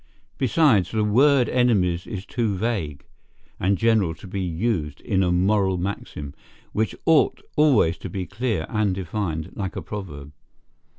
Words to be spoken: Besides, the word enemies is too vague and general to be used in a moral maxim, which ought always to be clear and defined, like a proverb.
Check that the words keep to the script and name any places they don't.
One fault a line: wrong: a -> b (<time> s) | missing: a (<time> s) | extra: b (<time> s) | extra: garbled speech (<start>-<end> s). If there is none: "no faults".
no faults